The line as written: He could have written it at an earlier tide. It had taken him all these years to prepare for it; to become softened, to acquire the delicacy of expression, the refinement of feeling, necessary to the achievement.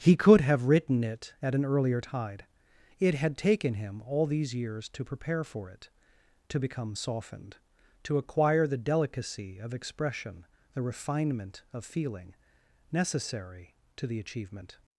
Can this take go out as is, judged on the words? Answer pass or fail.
pass